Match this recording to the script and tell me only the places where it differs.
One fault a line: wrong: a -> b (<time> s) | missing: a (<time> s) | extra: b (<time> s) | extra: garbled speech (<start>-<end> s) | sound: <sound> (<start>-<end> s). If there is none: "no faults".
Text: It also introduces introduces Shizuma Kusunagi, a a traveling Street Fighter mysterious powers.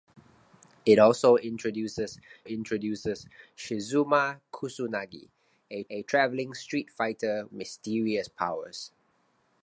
no faults